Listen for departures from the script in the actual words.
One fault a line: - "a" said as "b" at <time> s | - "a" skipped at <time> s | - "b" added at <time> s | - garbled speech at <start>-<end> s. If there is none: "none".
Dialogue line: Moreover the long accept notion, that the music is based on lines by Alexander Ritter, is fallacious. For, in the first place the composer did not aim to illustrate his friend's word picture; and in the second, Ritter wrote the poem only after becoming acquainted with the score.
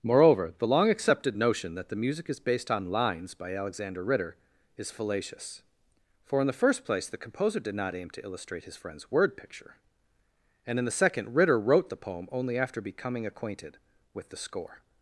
- "accept" said as "accepted" at 0.9 s